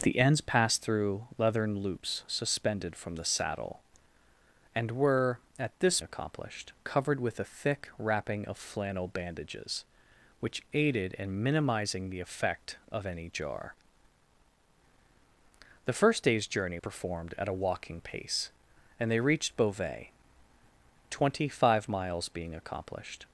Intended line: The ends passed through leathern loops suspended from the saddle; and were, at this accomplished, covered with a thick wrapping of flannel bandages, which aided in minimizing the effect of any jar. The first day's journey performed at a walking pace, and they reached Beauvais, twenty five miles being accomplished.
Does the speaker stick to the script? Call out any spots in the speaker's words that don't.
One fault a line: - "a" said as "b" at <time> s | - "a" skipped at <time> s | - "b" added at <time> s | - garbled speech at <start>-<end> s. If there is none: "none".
none